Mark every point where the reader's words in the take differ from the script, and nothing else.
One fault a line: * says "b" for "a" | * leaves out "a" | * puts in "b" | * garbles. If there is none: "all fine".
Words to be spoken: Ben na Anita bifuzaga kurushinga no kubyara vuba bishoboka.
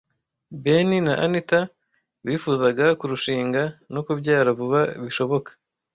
all fine